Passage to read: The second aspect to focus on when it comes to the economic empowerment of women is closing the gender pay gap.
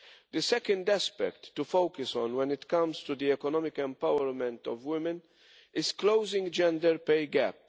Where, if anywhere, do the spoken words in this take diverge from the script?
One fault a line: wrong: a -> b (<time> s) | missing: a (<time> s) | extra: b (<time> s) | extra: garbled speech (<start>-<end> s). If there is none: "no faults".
missing: the (6.5 s)